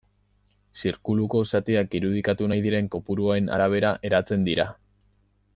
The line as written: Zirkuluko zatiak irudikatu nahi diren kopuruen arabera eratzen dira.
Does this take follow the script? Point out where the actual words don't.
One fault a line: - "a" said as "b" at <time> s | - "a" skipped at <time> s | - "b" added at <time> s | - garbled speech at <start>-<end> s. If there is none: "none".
none